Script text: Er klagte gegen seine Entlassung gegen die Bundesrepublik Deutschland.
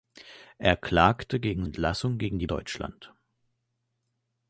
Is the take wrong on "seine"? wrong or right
wrong